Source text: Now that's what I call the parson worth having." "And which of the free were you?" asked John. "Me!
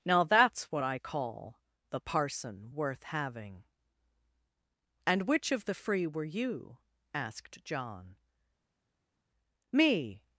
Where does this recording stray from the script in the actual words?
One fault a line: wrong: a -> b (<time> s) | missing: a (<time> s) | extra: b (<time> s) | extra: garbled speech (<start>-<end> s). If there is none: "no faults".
no faults